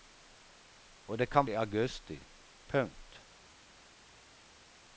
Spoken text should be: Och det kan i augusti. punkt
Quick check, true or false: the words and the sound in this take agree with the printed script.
true